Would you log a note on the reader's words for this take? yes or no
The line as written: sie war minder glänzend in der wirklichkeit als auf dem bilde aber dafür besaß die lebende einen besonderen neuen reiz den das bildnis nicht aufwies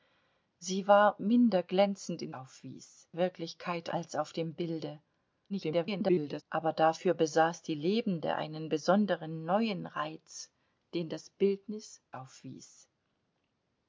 yes